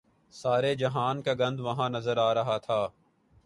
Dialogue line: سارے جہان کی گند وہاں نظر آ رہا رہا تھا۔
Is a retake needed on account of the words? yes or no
yes